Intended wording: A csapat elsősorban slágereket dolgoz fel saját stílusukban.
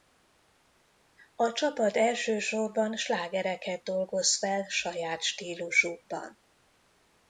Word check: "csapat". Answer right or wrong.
right